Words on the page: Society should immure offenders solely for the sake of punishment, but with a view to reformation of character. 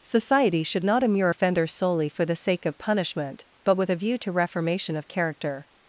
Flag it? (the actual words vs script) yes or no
yes